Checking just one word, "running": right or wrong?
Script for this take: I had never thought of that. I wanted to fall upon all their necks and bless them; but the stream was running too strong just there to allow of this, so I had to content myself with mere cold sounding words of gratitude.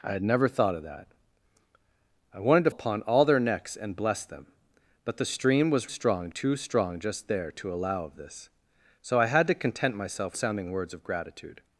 wrong